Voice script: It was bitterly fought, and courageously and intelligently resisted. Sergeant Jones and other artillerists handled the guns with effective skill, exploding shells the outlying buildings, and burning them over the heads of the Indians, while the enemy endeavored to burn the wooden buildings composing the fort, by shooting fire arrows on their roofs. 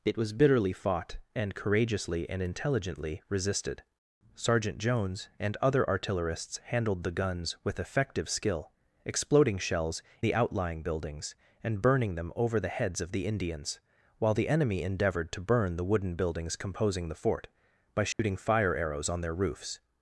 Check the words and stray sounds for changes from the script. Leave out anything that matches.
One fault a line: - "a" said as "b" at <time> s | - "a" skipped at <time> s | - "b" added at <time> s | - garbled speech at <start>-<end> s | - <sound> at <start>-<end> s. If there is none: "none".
- dropout at 18.1-18.2 s